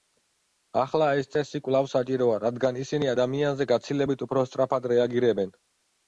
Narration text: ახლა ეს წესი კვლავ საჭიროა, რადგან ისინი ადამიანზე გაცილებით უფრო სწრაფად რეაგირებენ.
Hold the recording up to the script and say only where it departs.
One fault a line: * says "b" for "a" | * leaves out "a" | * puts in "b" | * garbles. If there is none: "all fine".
all fine